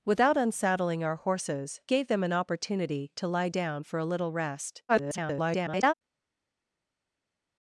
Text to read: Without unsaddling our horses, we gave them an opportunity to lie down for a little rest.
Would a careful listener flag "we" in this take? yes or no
yes